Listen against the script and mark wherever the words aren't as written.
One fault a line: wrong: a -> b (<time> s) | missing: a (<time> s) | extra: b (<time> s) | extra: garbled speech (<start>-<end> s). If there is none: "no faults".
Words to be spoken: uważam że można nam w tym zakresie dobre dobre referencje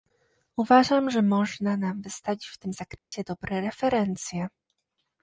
extra: wystawić (2.0 s)
missing: dobre (3.6 s)